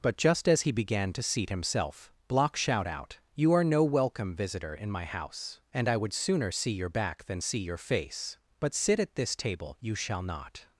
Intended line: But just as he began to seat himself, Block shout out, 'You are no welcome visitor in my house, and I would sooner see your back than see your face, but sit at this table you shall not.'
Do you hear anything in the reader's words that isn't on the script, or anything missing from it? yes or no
no